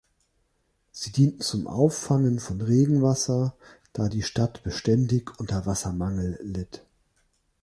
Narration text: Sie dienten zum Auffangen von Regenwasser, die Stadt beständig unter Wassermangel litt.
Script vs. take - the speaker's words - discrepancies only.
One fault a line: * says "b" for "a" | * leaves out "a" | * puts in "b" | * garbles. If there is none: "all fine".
* puts in "da"